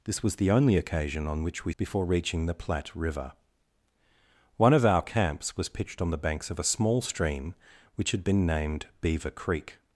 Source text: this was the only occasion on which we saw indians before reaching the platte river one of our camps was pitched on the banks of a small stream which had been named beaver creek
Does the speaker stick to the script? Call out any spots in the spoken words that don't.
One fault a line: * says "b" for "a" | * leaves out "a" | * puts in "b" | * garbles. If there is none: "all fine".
* leaves out "saw indians"